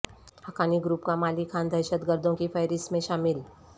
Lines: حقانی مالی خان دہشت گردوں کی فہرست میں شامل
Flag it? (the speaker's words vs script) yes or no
yes